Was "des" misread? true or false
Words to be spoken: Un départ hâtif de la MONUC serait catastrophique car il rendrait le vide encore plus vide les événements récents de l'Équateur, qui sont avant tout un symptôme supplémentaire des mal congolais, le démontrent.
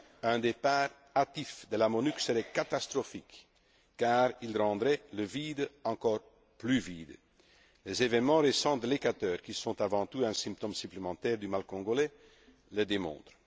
true